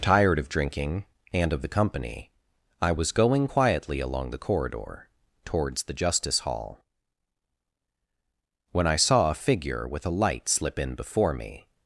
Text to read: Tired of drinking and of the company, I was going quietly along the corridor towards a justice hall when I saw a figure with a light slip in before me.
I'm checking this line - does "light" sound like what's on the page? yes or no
yes